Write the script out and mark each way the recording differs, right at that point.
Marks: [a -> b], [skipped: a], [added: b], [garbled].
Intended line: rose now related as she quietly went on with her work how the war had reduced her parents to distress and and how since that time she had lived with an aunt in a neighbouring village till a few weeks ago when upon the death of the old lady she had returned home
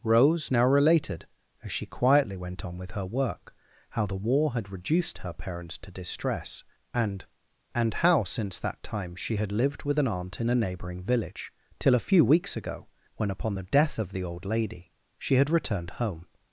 rose now related as she quietly went on with her work how the war had reduced her parents to distress and and how since that time she had lived with an aunt in a neighbouring village till a few weeks ago when upon the death of the old lady she had returned home